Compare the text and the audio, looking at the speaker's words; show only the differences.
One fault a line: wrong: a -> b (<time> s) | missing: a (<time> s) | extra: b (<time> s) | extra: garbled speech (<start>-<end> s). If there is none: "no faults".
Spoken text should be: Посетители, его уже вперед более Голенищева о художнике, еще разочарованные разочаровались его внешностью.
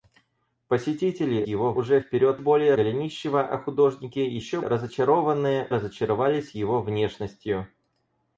no faults